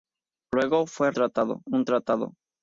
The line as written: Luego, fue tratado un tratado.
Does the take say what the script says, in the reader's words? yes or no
yes